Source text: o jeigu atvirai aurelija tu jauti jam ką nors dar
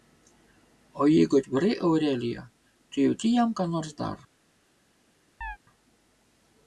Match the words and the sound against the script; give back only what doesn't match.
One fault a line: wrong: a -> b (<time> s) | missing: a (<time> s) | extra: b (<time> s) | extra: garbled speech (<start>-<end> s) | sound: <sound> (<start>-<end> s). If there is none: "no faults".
sound: chirp (5.4-5.6 s)